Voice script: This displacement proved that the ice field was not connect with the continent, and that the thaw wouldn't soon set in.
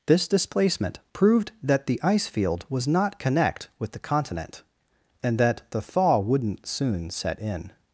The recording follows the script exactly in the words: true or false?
true